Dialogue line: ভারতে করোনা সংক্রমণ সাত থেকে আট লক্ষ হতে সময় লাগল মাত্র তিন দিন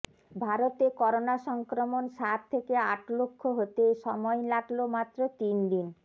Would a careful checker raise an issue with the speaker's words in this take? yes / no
no